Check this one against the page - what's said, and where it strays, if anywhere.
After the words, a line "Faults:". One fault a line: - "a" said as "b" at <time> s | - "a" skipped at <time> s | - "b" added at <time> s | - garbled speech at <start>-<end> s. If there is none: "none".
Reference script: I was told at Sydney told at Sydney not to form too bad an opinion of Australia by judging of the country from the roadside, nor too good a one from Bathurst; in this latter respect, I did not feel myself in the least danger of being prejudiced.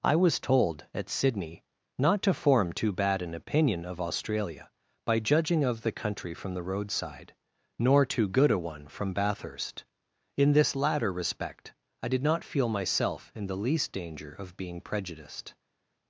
I was told at Sydney not to form too bad an opinion of Australia by judging of the country from the roadside, nor too good a one from Bathurst; in this latter respect, I did not feel myself in the least danger of being prejudiced.
Faults:
- "told at Sydney" skipped at 1.6 s